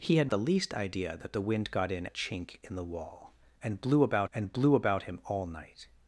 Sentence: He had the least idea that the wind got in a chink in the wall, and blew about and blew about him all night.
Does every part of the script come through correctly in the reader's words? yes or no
yes